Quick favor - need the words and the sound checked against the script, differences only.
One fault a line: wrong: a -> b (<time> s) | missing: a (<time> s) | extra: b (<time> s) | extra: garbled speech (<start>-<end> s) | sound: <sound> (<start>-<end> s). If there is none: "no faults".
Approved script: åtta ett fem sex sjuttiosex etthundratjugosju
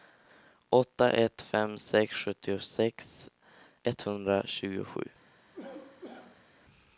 sound: cough (5.5-6.5 s)